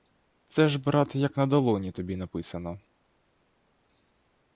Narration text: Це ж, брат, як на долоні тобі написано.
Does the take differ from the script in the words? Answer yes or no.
no